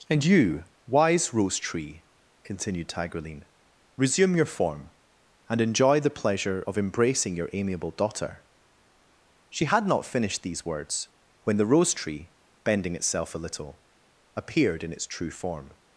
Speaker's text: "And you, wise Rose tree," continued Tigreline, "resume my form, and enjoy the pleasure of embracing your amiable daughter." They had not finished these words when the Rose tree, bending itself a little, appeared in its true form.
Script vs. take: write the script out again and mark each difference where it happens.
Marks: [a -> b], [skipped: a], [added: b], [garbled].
"And you, wise Rose tree," continued Tigreline, "resume [my -> your] form, and enjoy the pleasure of embracing your amiable daughter." [They -> She] had not finished these words when the Rose tree, bending itself a little, appeared in its true form.